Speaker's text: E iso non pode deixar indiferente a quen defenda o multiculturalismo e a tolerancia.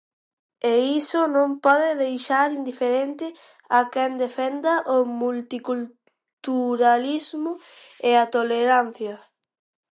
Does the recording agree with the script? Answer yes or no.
yes